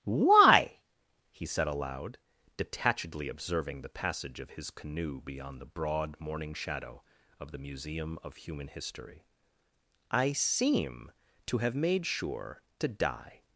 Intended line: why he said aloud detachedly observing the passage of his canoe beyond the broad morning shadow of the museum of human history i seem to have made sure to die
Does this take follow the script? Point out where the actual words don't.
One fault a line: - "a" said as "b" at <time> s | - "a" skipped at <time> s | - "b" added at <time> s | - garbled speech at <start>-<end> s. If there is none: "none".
none